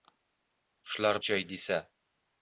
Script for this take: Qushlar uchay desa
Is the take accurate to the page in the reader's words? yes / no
yes